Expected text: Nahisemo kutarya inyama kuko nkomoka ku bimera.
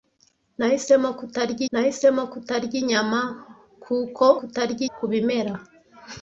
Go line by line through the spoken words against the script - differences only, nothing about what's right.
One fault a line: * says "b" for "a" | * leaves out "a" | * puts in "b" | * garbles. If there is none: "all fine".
* puts in "nahisemo kutarya"
* says "kutarya" for "nkomoka"